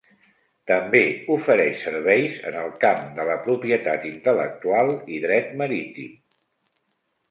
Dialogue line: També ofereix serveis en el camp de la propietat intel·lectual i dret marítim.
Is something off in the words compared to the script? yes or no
no